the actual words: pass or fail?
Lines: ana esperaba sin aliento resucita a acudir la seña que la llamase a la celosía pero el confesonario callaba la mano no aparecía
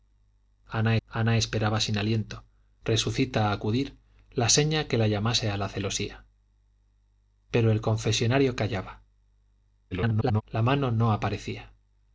fail